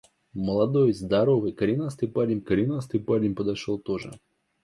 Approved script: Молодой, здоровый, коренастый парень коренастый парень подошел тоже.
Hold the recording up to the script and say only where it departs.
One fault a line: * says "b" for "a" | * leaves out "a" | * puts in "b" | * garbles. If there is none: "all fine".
all fine